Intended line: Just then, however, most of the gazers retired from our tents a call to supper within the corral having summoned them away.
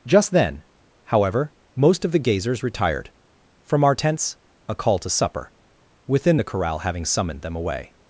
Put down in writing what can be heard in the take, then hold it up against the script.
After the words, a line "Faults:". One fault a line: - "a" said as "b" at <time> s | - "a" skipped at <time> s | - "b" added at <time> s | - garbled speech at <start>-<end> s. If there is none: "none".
Just then, however, most of the gazers retired from our tents a call to supper within the corral having summoned them away.
Faults:
none